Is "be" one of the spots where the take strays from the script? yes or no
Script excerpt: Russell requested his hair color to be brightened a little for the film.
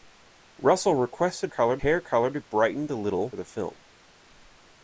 yes